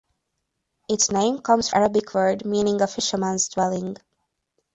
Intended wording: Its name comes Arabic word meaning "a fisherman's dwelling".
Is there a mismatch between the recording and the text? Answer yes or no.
no